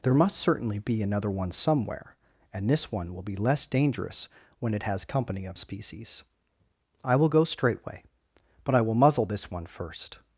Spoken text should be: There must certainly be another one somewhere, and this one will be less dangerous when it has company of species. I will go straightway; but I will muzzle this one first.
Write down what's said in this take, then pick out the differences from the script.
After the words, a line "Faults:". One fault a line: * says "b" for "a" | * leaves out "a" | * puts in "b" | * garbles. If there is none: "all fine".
There must certainly be another one somewhere, and this one will be less dangerous when it has company of species. I will go straightway; but I will muzzle this one first.
Faults:
all fine